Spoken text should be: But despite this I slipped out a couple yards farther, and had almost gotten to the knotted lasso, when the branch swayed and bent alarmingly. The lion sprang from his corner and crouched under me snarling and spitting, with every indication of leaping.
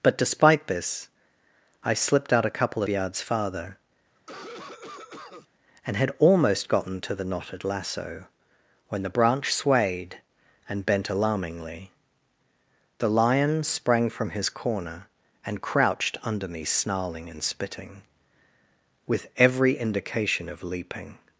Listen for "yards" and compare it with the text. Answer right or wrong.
right